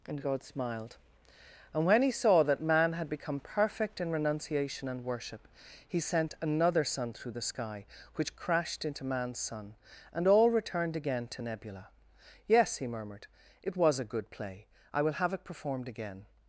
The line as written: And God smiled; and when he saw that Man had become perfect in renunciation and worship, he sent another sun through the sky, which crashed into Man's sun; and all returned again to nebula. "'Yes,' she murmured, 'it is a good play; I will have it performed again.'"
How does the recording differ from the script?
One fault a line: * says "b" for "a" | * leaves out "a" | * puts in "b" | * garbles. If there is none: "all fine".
* says "he" for "she"
* says "was" for "is"